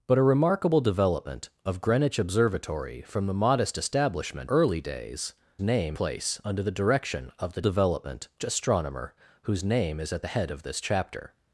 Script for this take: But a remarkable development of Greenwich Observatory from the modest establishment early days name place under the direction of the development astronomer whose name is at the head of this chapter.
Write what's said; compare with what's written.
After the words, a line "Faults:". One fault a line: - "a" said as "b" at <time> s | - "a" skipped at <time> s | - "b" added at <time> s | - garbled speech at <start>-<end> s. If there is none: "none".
But a remarkable development of Greenwich Observatory from the modest establishment early days name place under the direction of the development astronomer whose name is at the head of this chapter.
Faults:
none